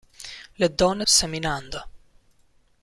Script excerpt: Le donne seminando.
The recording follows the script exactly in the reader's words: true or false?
true